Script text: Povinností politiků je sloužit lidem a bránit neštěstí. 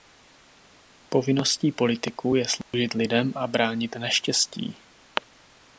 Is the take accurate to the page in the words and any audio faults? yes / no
no